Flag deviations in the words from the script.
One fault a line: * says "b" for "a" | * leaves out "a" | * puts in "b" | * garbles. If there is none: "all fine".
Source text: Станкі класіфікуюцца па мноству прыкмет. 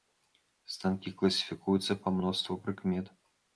all fine